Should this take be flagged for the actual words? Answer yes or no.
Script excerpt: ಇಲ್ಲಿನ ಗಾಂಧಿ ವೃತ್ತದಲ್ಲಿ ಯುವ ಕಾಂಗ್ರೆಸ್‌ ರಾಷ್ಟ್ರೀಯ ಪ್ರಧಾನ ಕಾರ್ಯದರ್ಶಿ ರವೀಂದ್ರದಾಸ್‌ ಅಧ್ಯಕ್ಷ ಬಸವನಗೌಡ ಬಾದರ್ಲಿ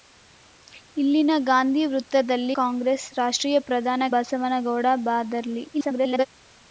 yes